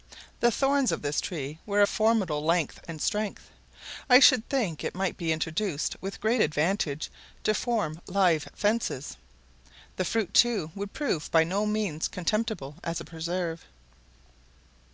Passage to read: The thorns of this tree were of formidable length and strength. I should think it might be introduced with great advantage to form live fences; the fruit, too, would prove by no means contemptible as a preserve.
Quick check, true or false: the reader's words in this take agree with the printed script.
true